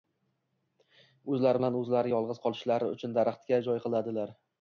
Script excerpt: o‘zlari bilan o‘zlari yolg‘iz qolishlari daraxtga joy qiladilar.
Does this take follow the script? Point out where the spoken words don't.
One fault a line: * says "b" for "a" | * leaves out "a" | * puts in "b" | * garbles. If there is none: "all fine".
* puts in "uchun"